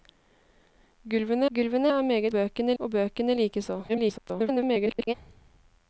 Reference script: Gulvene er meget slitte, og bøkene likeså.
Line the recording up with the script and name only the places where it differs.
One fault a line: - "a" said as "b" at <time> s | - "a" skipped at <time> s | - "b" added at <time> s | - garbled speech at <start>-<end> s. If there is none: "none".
- "gulvene" added at 1.5 s
- "slitte" said as "bøkene" at 2.3 s
- garbled speech at 3.9-5.1 s